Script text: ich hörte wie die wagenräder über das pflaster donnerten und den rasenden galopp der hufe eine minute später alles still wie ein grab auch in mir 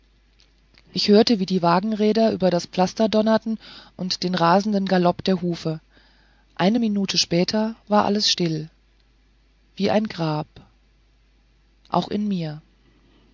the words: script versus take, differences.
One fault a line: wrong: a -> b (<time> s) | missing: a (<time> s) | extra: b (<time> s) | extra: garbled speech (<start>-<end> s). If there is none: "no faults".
extra: war (7.9 s)